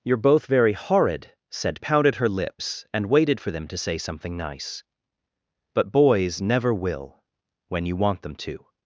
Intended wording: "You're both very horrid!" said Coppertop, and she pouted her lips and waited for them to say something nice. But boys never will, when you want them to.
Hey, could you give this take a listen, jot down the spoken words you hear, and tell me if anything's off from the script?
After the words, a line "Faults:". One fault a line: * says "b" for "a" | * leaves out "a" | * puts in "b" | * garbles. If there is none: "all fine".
"You're both very horrid!" said Pouted her lips and waited for them to say something nice. But boys never will, when you want them to.
Faults:
* leaves out "Coppertop and she"